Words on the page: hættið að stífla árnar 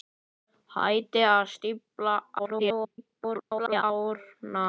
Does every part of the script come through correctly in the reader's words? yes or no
no